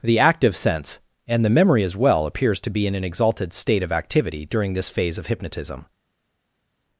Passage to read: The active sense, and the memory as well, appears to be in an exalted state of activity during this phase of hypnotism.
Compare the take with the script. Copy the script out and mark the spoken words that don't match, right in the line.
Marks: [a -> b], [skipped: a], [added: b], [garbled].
The active sense, and the memory as well, appears to be in an exalted state of activity during this phase of hypnotism.